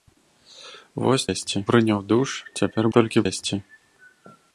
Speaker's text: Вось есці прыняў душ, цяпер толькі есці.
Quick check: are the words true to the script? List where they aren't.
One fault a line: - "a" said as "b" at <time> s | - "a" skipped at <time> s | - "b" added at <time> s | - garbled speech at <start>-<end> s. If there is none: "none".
none